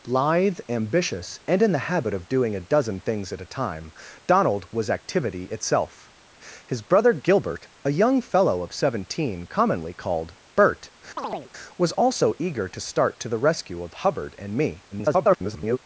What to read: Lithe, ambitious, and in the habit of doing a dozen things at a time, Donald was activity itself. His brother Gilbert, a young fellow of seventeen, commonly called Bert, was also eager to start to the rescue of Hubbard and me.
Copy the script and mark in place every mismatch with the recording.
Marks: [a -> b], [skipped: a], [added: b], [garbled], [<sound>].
Lithe, ambitious, and in the habit of doing a dozen things at a time, Donald was activity itself. His brother Gilbert, a young fellow of seventeen, commonly called Bert, [chirp] was also eager to start to the rescue of Hubbard and me. [garbled]